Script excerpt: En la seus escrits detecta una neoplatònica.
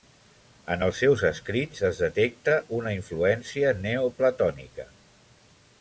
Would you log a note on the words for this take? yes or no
yes